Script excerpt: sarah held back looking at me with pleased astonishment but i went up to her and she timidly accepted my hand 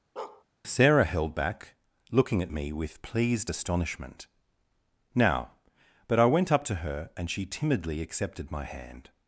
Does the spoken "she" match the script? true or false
true